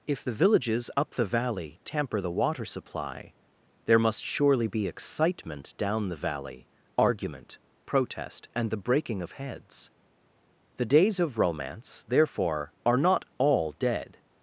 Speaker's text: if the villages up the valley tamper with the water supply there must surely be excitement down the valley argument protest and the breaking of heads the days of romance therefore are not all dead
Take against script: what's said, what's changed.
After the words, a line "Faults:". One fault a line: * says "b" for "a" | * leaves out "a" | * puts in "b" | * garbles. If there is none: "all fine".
if the villages up the valley tamper the water supply there must surely be excitement down the valley argument protest and the breaking of heads the days of romance therefore are not all dead
Faults:
* leaves out "with"